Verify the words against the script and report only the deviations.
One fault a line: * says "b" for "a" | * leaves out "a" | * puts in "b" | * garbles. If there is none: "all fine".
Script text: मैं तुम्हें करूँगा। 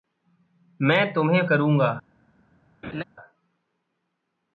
all fine